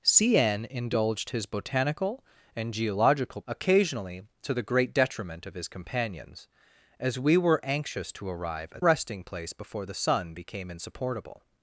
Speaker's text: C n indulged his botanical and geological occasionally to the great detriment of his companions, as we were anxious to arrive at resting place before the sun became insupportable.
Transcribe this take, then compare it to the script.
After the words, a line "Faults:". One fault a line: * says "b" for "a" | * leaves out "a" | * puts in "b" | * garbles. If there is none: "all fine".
C n indulged his botanical and geological occasionally to the great detriment of his companions, as we were anxious to arrive at resting place before the sun became insupportable.
Faults:
all fine